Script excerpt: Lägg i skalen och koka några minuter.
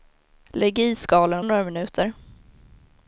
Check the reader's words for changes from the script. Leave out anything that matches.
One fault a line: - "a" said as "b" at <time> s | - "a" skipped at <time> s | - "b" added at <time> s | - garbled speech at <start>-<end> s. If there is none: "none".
- "koka" skipped at 1.4 s